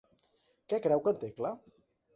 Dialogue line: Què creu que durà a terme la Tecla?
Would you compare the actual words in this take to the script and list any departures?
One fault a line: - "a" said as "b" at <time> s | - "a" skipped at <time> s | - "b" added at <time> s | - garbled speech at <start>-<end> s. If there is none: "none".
- "durà a terme" skipped at 1.1 s